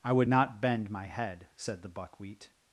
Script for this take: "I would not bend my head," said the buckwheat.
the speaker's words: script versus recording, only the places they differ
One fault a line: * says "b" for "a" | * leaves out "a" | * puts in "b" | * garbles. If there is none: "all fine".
all fine